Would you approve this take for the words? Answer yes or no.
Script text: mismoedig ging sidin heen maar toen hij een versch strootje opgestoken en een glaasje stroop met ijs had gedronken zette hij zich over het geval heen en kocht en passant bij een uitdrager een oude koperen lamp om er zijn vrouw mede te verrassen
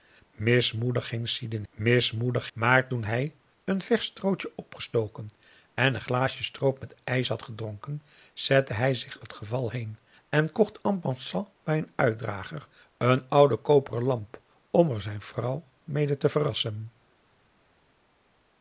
no